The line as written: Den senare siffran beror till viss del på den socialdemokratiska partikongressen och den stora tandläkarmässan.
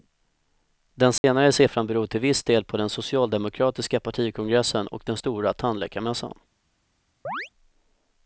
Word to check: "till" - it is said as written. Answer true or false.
true